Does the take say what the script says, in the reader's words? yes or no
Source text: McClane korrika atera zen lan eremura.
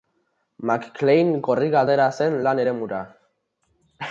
yes